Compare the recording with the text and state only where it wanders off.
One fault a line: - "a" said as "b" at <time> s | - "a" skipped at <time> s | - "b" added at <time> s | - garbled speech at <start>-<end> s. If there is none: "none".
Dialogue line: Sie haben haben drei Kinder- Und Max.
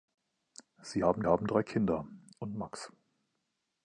none